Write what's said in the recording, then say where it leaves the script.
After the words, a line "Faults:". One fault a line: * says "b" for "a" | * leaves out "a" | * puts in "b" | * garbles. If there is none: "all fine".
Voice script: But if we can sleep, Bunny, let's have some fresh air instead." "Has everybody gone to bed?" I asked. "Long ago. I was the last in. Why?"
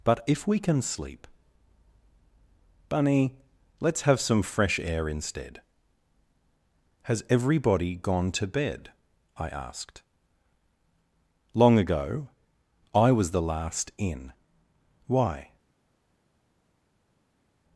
But if we can sleep, Bunny, let's have some fresh air instead." "Has everybody gone to bed?" I asked. "Long ago. I was the last in. Why?"
Faults:
all fine